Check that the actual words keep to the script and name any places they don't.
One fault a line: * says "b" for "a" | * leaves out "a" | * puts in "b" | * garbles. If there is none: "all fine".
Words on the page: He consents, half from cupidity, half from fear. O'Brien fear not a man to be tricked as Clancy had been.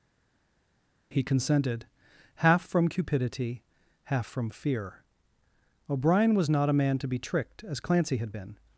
* says "consented" for "consents"
* says "was" for "fear"